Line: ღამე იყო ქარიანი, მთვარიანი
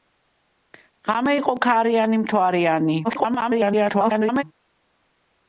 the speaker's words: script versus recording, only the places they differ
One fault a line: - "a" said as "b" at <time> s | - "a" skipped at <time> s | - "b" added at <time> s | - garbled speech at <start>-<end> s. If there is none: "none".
- garbled speech at 3.0-4.4 s